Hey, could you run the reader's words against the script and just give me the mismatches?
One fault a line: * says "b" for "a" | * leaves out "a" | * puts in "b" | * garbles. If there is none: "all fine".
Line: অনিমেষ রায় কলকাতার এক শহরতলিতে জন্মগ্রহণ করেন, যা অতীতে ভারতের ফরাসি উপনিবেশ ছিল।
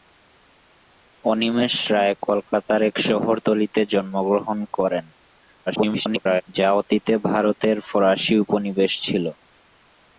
* garbles